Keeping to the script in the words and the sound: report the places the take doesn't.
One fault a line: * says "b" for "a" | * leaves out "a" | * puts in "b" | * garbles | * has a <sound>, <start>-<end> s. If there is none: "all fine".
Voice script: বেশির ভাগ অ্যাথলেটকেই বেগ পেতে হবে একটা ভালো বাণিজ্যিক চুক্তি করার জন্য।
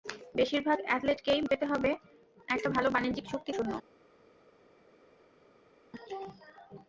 * leaves out "বেগ"
* leaves out "করার"